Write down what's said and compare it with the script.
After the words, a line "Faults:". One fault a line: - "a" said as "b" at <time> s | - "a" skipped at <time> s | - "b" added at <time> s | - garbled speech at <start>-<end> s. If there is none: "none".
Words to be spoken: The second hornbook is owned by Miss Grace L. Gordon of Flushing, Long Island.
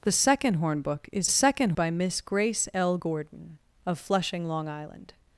The second hornbook is second by Miss Grace L. Gordon of Flushing, Long Island.
Faults:
- "owned" said as "second" at 1.3 s